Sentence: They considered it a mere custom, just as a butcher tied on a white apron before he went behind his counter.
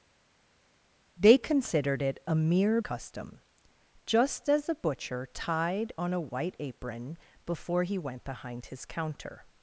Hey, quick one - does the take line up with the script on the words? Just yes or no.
yes